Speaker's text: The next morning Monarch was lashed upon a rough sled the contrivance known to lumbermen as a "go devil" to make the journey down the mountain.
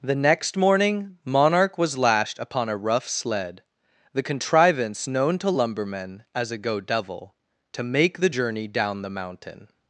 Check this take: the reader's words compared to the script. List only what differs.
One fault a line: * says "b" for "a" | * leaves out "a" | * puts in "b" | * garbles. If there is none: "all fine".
all fine